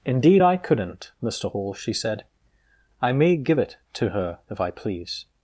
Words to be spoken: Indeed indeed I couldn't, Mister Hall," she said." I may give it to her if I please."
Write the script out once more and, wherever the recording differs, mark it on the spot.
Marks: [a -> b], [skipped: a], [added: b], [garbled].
Indeed [skipped: indeed] I couldn't, Mister Hall," she said." I may give it to her if I please."